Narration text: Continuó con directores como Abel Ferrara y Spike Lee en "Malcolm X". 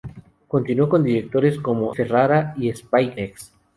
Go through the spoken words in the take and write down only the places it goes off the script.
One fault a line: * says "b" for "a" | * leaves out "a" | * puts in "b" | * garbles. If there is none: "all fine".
* leaves out "Abel"
* leaves out "Lee en Malcolm"